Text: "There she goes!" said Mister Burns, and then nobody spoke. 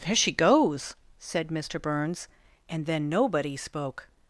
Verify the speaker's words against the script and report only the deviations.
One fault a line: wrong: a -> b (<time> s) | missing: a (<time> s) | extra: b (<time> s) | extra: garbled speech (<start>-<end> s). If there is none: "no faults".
no faults